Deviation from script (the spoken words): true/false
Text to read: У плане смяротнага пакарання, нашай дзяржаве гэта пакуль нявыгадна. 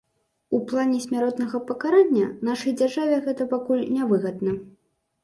false